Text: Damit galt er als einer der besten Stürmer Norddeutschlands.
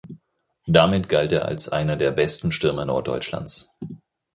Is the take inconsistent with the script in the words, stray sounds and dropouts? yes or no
no